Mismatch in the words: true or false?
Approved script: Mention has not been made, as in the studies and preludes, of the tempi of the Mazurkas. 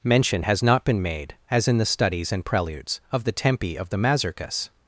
false